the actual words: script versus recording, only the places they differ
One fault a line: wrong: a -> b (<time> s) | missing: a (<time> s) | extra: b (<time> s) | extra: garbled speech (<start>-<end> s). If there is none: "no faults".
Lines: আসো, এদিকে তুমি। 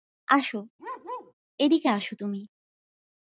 extra: আসো (1.9 s)